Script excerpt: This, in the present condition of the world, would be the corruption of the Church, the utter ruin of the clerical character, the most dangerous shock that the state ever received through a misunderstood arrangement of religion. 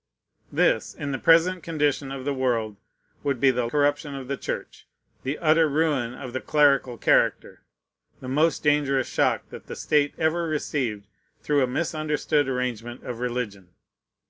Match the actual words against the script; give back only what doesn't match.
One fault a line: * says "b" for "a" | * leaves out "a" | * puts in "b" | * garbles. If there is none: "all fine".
all fine